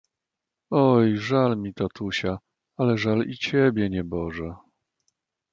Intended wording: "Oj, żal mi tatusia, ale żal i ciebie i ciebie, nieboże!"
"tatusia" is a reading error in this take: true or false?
false